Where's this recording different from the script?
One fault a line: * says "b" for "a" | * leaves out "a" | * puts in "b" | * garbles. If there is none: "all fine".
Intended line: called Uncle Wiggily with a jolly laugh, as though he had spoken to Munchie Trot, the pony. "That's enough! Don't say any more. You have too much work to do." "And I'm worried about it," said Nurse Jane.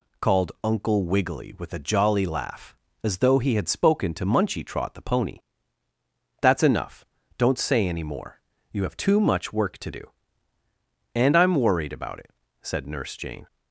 all fine